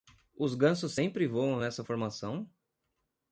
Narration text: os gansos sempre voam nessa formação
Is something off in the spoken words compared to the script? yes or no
no